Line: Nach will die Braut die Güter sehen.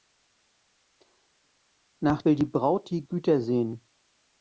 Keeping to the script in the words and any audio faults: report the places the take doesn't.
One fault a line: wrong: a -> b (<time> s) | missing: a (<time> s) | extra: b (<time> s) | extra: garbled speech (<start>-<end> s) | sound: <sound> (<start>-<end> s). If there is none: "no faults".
no faults